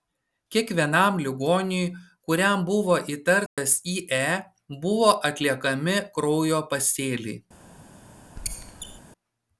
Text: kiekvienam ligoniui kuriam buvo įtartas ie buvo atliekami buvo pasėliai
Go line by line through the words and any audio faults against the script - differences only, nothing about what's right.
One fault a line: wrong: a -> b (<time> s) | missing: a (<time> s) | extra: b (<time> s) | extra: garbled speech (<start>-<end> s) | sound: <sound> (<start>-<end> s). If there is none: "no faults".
sound: dropout (3.5-3.6 s)
wrong: buvo -> kraujo (6.2 s)
sound: squeak (8.4-9.0 s)